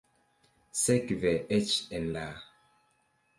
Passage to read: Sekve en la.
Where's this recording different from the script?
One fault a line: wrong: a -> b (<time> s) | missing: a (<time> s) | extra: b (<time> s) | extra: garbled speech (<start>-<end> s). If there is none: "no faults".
extra: eĉ (1.6 s)